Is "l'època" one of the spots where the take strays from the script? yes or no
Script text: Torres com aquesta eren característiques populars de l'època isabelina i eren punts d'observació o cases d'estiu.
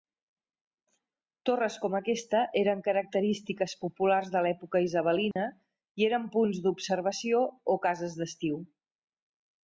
no